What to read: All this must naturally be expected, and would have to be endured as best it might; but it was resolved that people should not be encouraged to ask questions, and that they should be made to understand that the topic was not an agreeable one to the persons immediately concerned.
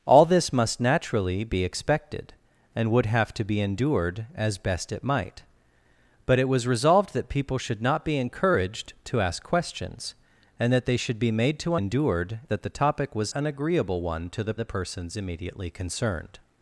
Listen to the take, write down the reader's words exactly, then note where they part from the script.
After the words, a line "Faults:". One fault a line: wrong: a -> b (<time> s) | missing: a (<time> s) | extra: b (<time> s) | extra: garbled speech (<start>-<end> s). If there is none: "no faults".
All this must naturally be expected, and would have to be endured as best it might; but it was resolved that people should not be encouraged to ask questions, and that they should be made to endured that the topic was an agreeable one to the the persons immediately concerned.
Faults:
wrong: understand -> endured (11.7 s)
missing: not (13.3 s)
extra: the (14.5 s)